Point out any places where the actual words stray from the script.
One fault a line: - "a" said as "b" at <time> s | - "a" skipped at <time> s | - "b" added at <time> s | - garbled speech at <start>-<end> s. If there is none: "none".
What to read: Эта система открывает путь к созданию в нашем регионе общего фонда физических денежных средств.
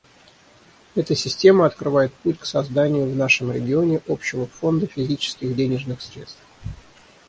none